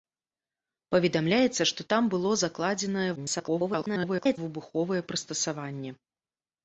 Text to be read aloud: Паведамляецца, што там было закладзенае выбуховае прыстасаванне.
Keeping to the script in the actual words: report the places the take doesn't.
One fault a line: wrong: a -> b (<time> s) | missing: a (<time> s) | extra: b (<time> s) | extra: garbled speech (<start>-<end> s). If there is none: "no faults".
extra: garbled speech (3.2-4.4 s)